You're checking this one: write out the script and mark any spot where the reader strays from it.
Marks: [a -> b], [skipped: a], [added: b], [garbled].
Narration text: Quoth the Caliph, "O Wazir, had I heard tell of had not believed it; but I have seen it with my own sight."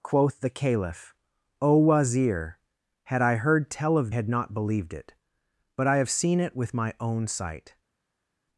Quoth the Caliph, "O Wazir, had I heard tell of had not believed it; but I have seen it with my own sight."